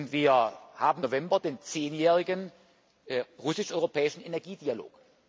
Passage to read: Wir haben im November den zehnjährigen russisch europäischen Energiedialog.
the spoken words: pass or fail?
fail